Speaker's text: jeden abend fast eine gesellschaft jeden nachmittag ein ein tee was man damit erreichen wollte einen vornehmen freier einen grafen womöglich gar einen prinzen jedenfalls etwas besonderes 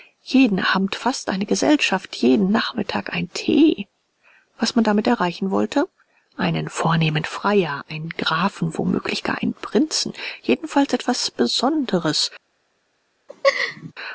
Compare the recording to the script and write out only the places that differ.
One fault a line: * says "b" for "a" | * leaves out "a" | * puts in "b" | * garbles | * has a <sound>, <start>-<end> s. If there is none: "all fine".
* leaves out "ein"
* has a laugh, 13.3-13.9 s